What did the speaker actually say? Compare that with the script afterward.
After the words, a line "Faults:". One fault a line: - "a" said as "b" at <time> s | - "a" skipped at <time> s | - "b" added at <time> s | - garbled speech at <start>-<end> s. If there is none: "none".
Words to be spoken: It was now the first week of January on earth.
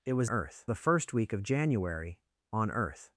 It was earth the first week of January on earth.
Faults:
- "now" said as "earth" at 0.3 s